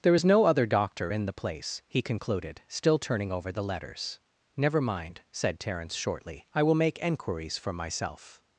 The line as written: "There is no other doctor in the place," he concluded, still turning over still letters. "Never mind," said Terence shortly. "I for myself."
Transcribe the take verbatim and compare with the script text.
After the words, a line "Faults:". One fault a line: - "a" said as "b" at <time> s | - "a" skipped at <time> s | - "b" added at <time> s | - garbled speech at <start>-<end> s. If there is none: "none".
"There is no other doctor in the place," he concluded, still turning over the letters. "Never mind," said Terence shortly. "I will make enquiries for myself."
Faults:
- "still" said as "the" at 3.5 s
- "will make enquiries" added at 6.6 s